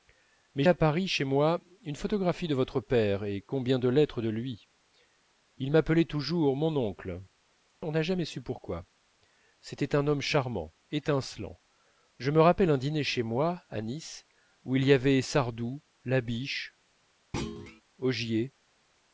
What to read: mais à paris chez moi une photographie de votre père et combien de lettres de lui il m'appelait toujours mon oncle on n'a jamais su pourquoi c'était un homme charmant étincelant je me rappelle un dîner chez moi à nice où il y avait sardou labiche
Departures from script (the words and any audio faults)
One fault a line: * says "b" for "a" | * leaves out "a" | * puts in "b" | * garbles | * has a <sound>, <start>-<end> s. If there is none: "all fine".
* has a thud, 17.3-17.8 s